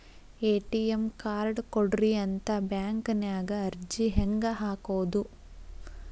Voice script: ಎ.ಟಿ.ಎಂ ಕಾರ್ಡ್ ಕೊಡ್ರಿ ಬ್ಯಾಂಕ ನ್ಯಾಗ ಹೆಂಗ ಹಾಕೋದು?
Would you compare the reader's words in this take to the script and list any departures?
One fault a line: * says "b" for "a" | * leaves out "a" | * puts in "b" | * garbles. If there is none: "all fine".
* puts in "ಅಂತ"
* puts in "ಅರ್ಜಿ"